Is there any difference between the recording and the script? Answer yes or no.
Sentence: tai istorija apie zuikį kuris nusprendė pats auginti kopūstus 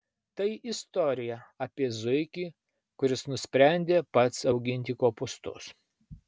no